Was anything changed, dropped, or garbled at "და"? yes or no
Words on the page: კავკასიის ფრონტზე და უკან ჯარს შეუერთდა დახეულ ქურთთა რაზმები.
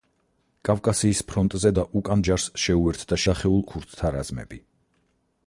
no